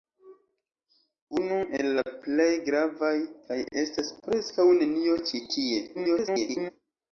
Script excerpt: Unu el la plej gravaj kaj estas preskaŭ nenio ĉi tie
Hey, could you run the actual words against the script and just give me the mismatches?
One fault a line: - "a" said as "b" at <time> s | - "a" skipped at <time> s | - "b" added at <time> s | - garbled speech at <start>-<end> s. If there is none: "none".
- garbled speech at 5.9-6.7 s